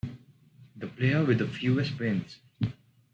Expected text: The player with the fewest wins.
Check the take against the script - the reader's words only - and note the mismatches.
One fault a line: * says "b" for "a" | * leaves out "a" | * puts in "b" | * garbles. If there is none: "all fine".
all fine